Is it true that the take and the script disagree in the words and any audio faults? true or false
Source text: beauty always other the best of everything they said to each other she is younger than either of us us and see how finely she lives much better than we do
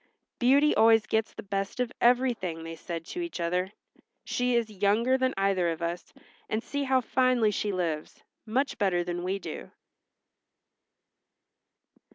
true